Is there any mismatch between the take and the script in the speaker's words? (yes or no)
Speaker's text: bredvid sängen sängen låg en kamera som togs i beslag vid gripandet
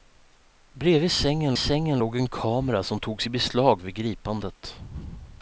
no